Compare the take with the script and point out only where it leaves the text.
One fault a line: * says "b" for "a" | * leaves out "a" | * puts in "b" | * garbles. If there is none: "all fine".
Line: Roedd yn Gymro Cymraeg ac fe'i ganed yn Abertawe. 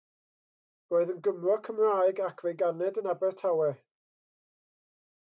all fine